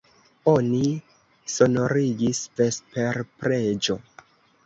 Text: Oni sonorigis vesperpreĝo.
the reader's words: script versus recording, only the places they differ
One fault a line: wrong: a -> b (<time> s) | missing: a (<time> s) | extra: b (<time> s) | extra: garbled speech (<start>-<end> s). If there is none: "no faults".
no faults